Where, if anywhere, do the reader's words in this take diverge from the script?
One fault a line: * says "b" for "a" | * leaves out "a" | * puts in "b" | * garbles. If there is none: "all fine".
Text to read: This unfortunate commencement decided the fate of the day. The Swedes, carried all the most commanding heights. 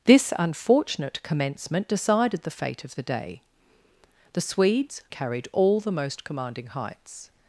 all fine